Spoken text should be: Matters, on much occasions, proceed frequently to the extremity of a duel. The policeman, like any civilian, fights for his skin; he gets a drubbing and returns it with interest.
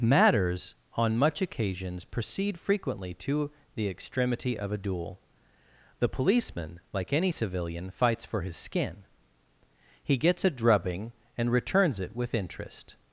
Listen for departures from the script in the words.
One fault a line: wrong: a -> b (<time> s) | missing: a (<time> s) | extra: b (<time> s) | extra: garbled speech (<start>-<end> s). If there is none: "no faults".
no faults